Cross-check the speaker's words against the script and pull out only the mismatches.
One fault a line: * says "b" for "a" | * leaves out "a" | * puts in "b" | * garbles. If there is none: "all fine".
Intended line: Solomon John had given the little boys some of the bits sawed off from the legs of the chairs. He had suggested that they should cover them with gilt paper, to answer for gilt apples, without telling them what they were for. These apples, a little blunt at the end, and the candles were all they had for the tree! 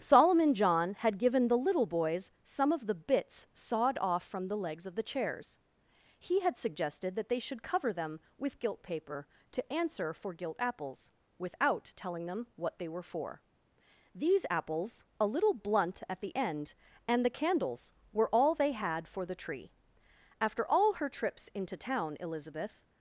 * puts in "After all her trips into town Elizabeth"